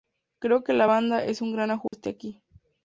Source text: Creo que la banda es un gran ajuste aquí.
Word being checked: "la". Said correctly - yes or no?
yes